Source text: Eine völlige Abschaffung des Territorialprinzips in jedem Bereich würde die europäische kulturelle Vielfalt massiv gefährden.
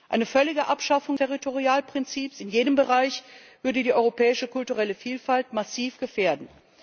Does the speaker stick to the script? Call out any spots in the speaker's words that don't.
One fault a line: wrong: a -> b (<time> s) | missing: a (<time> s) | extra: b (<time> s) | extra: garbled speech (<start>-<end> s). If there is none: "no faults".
missing: des (1.2 s)